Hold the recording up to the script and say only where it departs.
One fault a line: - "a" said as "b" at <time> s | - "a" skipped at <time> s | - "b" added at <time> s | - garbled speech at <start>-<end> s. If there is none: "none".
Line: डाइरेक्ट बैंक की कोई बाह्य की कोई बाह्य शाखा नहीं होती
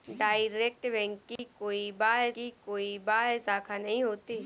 none